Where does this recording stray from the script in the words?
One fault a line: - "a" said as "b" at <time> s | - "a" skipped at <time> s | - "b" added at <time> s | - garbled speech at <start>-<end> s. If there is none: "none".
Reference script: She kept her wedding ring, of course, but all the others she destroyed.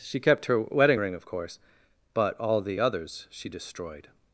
none